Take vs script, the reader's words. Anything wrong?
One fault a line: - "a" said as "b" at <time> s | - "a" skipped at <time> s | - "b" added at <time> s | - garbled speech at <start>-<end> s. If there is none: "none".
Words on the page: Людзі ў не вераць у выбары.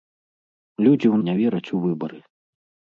none